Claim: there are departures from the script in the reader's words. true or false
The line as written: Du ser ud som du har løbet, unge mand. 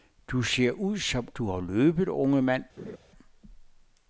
false